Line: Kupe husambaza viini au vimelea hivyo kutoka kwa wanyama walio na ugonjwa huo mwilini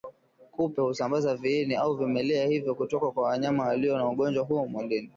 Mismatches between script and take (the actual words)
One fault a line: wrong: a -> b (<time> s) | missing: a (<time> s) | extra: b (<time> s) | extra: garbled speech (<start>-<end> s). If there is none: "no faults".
no faults